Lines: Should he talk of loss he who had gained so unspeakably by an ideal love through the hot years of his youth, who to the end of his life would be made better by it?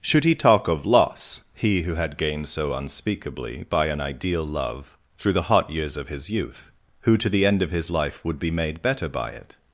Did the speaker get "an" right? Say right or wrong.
right